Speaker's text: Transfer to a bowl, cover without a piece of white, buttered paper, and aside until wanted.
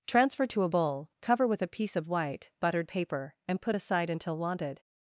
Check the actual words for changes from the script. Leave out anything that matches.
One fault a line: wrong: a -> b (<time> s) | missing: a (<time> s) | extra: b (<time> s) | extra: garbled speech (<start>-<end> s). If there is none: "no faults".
wrong: without -> with (1.5 s)
extra: put (3.6 s)